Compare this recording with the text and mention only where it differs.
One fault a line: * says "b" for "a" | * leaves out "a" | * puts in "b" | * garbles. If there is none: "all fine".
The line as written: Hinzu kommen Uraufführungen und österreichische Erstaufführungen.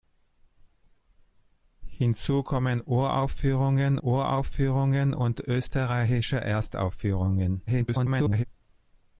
* puts in "Uraufführungen"
* garbles